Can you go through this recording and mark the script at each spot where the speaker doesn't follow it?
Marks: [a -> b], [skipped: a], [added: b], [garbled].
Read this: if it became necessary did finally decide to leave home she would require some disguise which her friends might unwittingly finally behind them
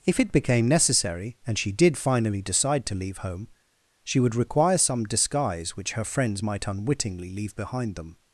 if it became necessary [added: and she] did finally decide to leave home she would require some disguise which her friends might unwittingly [finally -> leave] behind them